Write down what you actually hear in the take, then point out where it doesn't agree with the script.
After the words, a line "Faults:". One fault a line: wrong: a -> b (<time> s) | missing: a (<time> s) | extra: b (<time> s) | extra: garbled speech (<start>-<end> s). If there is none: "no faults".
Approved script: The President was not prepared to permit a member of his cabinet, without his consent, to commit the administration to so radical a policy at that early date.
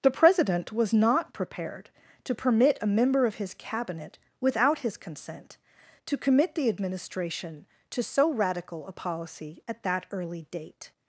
The President was not prepared to permit a member of his cabinet, without his consent, to commit the administration to so radical a policy at that early date.
Faults:
no faults